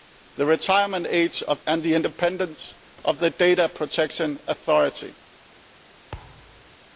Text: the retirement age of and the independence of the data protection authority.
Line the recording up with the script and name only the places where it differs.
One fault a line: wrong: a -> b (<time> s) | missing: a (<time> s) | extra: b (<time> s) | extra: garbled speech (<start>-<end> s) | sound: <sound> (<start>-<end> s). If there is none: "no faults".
sound: thud (6.1-6.8 s)